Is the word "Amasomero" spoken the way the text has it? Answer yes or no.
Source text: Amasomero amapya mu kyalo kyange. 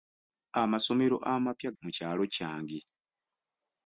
yes